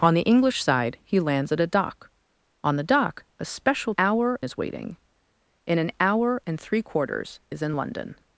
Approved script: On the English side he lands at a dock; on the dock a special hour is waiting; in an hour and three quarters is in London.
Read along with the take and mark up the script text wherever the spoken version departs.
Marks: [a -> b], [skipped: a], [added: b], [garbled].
On the English side he lands at a dock; on the dock a special hour is waiting; in an hour and three quarters is in London.